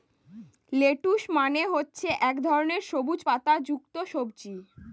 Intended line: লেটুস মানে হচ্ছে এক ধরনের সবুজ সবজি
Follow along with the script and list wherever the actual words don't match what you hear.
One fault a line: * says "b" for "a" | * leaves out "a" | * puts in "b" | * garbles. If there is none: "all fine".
* puts in "পাতা যুক্ত"